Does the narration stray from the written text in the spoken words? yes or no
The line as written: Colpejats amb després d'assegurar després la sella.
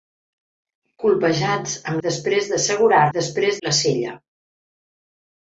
no